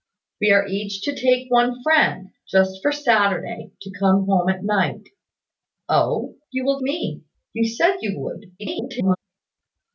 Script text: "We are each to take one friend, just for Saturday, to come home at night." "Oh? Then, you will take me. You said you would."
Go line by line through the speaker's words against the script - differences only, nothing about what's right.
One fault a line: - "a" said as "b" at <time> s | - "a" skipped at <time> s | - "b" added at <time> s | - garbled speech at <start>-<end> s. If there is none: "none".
- "Then" skipped at 6.4 s
- "take" skipped at 6.8 s
- garbled speech at 8.6-9.2 s